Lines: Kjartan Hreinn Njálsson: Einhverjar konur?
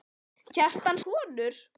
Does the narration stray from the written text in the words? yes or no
yes